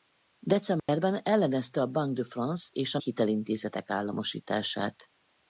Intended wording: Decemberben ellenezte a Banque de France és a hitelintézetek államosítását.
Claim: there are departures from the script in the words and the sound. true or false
true